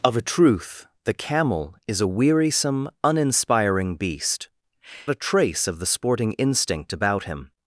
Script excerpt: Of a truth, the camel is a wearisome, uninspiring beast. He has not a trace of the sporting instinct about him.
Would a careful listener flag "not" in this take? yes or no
yes